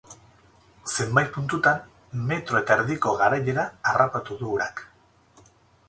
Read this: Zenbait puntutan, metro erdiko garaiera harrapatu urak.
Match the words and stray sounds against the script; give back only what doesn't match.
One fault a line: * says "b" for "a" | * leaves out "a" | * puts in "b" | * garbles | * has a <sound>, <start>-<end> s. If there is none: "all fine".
* puts in "eta"
* puts in "du"